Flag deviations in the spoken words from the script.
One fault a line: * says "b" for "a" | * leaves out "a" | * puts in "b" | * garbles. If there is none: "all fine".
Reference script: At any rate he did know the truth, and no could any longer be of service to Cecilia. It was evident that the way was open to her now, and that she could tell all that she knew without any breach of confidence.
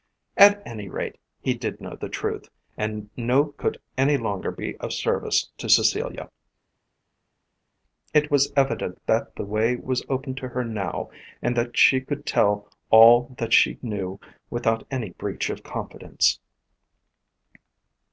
all fine